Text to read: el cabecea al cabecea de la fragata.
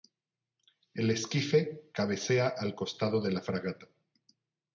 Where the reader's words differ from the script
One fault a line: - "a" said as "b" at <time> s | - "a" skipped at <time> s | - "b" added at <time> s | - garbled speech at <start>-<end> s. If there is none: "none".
- "esquife" added at 1.1 s
- "cabecea" said as "costado" at 2.7 s